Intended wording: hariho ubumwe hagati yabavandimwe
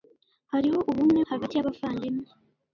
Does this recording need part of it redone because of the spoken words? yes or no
no